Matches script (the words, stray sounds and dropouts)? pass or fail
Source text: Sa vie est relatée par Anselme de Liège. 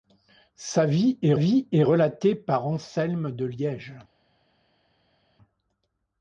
fail